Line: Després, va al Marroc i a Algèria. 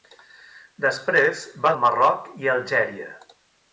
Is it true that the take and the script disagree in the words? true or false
false